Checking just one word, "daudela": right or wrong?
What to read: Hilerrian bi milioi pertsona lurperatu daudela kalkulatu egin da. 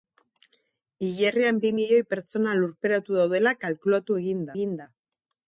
right